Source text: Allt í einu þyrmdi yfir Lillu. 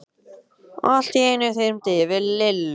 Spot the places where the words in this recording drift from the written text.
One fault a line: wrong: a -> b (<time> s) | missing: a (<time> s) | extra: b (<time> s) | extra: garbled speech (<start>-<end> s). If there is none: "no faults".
no faults